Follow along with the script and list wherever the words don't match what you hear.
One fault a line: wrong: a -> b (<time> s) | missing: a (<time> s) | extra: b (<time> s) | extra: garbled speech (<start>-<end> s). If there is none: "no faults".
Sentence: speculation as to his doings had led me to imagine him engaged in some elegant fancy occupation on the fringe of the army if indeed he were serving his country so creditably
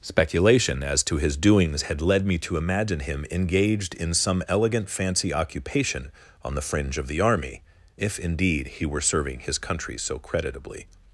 no faults